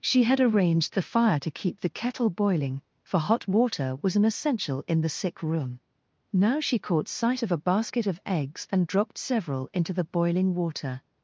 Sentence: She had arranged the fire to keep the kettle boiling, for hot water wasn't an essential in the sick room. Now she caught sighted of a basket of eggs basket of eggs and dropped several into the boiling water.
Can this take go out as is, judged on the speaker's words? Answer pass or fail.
fail